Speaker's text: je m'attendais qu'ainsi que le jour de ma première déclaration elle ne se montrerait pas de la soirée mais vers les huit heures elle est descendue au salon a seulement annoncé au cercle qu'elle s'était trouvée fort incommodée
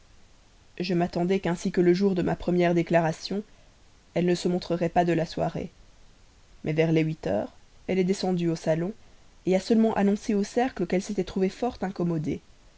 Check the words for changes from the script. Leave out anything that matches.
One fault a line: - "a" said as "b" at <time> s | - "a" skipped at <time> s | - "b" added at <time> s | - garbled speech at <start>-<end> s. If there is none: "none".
none